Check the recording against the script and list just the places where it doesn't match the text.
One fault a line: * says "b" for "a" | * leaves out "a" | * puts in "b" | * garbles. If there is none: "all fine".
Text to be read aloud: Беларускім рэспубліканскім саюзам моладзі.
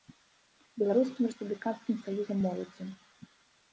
all fine